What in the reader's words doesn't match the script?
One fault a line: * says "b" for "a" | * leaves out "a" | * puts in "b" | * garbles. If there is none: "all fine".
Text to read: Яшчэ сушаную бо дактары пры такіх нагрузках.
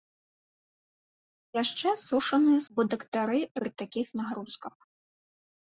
all fine